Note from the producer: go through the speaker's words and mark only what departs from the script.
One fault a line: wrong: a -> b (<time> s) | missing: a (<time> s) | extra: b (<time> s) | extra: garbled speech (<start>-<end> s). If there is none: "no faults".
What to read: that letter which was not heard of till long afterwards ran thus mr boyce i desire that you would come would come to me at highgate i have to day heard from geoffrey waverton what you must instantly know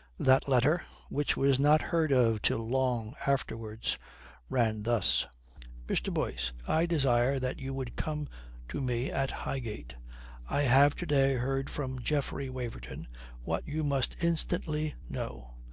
missing: would come (8.3 s)